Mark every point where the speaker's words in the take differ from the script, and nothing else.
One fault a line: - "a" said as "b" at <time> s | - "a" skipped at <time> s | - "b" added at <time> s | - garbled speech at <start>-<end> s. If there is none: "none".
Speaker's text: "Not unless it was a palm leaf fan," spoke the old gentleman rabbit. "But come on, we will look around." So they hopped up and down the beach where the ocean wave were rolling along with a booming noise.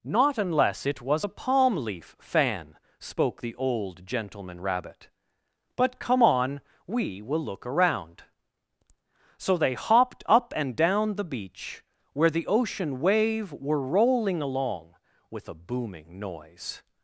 none